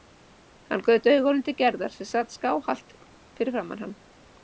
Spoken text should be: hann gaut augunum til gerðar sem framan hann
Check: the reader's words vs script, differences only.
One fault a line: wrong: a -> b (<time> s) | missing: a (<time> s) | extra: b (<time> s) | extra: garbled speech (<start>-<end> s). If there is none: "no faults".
extra: sat skáhallt fyrir (2.1 s)